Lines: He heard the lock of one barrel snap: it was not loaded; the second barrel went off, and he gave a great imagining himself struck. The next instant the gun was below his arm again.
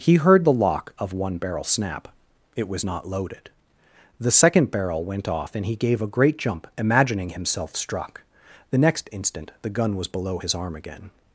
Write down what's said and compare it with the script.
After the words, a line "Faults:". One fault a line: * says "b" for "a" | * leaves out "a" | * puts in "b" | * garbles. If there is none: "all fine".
He heard the lock of one barrel snap: it was not loaded; the second barrel went off, and he gave a great jump, imagining himself struck. The next instant the gun was below his arm again.
Faults:
* puts in "jump"